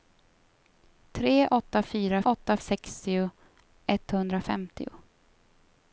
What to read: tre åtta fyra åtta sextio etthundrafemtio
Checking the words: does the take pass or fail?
pass